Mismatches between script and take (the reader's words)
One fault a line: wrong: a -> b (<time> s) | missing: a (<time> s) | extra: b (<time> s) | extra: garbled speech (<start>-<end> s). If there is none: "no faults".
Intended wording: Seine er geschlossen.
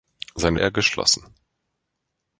no faults